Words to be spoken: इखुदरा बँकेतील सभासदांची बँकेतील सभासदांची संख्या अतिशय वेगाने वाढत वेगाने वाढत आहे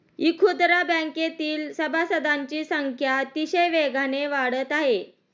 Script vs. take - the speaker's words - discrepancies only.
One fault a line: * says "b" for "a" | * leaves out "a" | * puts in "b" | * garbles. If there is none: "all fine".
* leaves out "बँकेतील सभासदांची"
* leaves out "वेगाने वाढत"